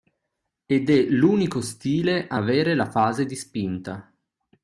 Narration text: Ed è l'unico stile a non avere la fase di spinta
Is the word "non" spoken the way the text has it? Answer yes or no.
no